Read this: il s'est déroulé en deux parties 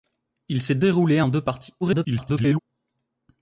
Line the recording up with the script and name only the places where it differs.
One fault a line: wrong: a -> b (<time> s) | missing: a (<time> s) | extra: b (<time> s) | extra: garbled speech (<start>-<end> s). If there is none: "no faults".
extra: garbled speech (1.8-2.6 s)